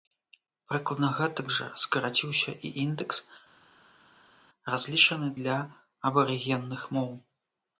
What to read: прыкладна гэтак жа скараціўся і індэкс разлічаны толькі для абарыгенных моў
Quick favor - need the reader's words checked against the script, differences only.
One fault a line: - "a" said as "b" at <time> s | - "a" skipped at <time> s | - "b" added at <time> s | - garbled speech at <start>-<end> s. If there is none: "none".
- "толькі" skipped at 5.3 s